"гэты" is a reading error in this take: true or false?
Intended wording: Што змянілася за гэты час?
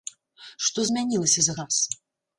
true